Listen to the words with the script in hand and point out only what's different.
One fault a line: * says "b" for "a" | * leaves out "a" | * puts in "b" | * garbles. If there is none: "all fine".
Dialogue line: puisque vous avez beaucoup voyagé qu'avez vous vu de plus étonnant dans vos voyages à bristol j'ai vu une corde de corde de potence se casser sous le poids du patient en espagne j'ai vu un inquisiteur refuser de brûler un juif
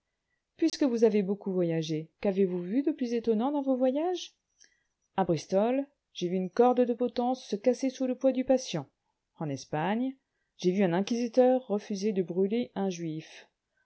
* leaves out "corde de"